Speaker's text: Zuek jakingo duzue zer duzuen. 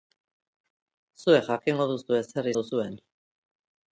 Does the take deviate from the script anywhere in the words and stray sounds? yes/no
no